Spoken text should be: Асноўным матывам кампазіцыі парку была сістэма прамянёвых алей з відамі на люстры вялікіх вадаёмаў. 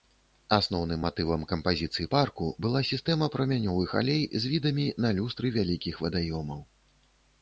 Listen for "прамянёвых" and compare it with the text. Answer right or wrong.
right